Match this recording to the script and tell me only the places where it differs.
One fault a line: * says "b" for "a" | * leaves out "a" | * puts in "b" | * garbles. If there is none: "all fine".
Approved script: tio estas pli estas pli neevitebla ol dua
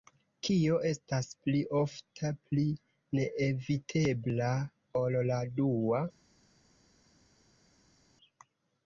* says "kio" for "tio"
* says "ofta" for "estas"
* puts in "la"